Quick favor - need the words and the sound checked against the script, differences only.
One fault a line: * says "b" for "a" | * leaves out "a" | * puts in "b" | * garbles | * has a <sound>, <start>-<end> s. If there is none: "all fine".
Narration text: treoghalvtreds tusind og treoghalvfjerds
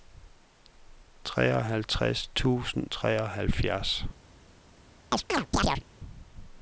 * leaves out "og"
* has a chirp, 5.1-5.8 s